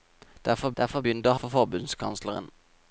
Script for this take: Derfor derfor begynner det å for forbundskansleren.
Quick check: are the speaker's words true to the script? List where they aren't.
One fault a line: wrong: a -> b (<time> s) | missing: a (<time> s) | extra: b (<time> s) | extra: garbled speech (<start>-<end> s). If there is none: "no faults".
no faults